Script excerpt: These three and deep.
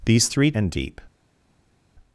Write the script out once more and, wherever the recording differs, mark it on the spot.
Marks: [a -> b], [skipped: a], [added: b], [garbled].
These three and deep.